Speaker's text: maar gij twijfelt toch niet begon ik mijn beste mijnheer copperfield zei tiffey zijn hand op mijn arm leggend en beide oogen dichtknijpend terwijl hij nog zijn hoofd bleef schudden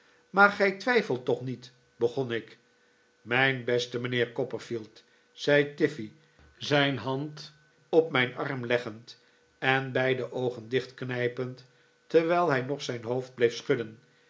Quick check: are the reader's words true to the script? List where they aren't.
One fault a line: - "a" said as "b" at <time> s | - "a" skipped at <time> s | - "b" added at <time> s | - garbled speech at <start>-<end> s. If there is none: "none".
none